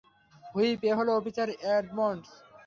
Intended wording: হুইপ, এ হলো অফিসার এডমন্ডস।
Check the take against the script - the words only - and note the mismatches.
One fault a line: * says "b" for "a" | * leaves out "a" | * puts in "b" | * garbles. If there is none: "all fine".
all fine